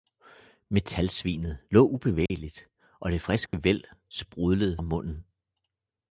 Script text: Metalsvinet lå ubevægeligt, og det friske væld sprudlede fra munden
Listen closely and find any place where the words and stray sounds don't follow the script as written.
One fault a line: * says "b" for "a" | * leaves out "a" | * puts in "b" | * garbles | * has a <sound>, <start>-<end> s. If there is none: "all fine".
* has a dropout, 2.3-2.3 s
* has a dropout, 3.5-3.5 s
* leaves out "fra"